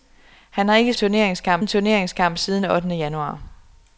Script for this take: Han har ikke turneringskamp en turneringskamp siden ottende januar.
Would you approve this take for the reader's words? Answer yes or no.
yes